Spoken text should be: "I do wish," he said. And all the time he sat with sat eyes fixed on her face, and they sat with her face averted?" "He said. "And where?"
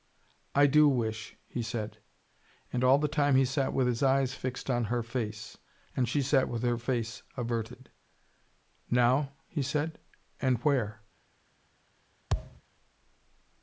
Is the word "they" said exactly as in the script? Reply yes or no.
no